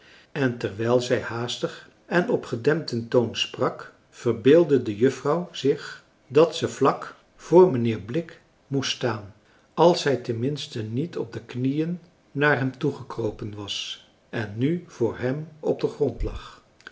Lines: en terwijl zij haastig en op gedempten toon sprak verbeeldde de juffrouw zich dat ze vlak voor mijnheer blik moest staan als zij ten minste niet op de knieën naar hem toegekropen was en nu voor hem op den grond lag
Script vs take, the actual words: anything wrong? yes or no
no